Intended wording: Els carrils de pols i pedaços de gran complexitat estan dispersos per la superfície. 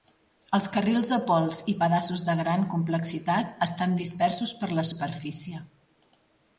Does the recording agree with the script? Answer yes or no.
yes